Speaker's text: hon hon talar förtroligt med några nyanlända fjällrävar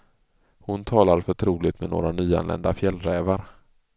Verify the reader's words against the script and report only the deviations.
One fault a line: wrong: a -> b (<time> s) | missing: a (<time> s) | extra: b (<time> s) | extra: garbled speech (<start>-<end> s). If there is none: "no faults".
missing: hon (0.8 s)